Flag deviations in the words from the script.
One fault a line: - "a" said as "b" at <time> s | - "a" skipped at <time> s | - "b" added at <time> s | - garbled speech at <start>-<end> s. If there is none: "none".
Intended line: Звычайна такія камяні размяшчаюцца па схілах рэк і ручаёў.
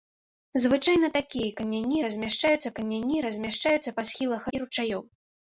- "камяні размяшчаюцца" added at 2.8 s
- "рэк" skipped at 4.5 s